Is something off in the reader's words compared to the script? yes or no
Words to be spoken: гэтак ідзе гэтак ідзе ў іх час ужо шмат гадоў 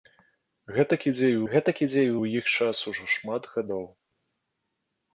no